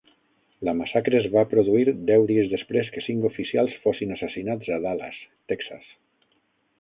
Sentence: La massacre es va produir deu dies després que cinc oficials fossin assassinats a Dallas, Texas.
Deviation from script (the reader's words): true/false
false